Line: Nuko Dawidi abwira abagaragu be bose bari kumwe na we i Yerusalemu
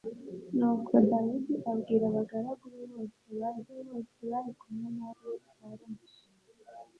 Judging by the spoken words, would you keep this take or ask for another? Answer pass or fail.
fail